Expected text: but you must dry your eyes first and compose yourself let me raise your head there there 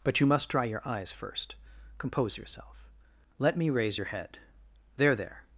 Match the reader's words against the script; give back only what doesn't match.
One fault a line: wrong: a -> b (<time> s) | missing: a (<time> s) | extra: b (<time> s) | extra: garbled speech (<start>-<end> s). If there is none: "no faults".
missing: and (1.6 s)